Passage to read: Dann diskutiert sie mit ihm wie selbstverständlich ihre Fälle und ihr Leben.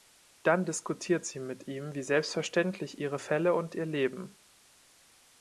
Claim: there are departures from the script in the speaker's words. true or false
false